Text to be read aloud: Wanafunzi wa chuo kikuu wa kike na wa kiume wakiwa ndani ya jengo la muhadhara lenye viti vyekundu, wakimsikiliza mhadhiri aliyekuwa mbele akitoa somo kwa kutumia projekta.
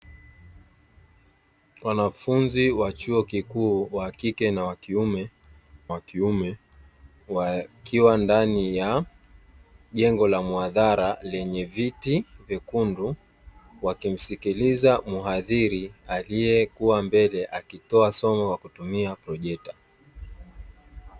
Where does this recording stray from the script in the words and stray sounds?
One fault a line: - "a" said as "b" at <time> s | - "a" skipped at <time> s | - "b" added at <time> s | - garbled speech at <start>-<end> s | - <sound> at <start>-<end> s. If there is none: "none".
- "wa kiume" added at 5.9 s